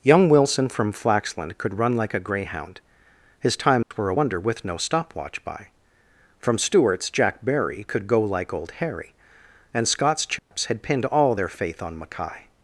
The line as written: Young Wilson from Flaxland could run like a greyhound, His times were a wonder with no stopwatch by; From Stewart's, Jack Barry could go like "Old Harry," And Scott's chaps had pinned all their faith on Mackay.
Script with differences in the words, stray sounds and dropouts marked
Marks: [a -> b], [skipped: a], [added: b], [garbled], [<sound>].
Young Wilson from Flaxland could run like a greyhound, His times [dropout] were a wonder with no stopwatch by; From Stewart's, Jack Barry could go like "Old Harry," And Scott's chaps [dropout] had pinned all their faith on Mackay.